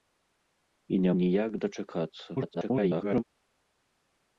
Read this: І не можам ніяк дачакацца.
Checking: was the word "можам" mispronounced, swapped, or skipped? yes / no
yes